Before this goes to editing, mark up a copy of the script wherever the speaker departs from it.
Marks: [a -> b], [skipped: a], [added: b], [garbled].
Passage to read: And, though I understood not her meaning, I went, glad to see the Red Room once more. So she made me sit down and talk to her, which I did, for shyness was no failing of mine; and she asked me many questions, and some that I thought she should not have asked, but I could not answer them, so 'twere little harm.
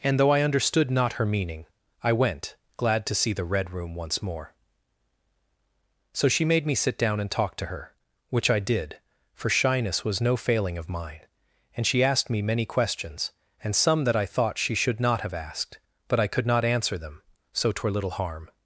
And, though I understood not her meaning, I went, glad to see the Red Room once more. So she made me sit down and talk to her, which I did, for shyness was no failing of mine; and she asked me many questions, and some that I thought she should not have asked, but I could not answer them, so 'twere little harm.